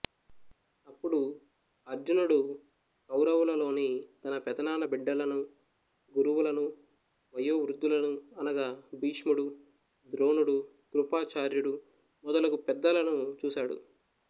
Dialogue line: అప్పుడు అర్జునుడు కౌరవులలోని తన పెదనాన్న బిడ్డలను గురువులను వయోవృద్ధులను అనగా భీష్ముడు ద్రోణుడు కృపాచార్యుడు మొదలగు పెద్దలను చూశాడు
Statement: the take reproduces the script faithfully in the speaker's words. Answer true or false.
true